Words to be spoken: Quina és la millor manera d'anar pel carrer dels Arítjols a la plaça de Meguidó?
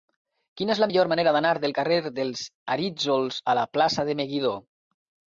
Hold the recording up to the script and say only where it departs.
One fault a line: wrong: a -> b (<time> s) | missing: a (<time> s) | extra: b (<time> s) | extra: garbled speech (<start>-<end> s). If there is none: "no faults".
wrong: pel -> del (1.6 s)